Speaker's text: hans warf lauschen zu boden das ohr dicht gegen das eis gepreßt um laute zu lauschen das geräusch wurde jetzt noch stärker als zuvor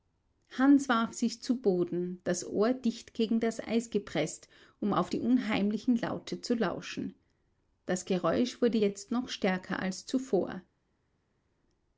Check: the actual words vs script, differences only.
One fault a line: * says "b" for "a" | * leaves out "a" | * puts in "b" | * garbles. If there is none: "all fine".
* says "sich" for "lauschen"
* puts in "auf die unheimlichen"